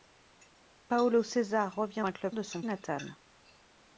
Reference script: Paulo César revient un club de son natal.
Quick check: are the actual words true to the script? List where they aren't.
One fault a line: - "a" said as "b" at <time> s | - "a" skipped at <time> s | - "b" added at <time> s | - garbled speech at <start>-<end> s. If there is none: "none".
none